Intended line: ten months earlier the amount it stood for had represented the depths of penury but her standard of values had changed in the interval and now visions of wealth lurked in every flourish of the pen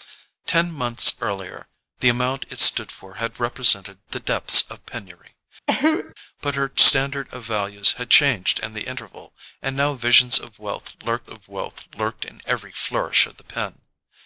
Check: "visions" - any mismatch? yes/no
no